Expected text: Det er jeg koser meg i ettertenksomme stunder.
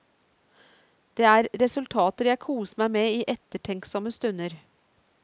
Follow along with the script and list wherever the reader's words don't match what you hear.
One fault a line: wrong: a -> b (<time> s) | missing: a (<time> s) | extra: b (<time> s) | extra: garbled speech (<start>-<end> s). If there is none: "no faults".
extra: resultater (1.6 s)
extra: med (3.0 s)